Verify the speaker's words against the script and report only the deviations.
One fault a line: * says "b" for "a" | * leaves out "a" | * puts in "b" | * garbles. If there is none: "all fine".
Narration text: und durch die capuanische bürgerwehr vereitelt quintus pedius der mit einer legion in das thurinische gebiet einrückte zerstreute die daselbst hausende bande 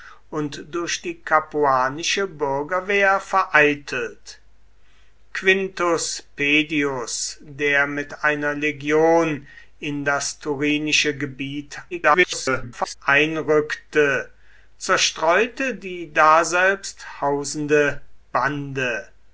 * garbles